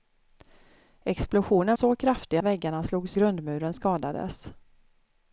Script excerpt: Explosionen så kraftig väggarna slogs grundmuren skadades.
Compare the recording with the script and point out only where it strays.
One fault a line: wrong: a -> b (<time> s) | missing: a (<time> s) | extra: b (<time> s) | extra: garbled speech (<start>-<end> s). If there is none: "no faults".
no faults